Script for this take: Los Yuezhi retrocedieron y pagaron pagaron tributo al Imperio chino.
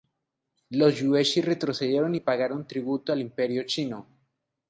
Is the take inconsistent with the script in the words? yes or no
yes